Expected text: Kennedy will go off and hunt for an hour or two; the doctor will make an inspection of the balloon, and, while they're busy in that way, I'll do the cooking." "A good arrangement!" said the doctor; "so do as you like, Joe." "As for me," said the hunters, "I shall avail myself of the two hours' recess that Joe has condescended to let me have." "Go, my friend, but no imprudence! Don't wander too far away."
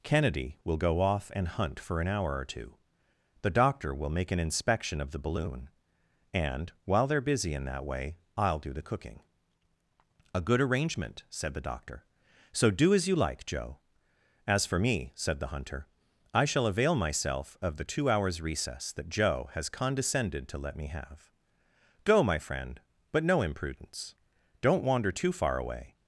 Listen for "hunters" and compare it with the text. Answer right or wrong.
wrong